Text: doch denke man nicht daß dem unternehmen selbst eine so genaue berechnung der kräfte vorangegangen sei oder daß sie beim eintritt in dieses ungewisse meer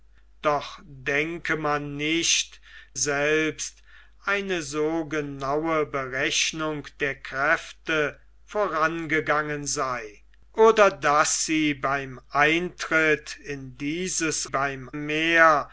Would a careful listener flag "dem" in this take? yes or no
yes